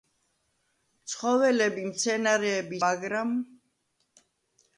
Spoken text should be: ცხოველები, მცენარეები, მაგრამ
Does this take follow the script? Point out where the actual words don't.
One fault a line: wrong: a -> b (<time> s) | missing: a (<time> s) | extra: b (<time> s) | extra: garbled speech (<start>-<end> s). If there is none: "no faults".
no faults